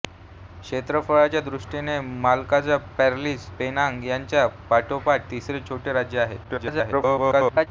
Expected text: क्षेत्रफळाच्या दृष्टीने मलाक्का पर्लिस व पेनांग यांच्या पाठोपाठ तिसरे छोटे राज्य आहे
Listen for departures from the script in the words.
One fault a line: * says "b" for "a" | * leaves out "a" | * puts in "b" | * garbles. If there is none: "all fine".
* leaves out "व"
* garbles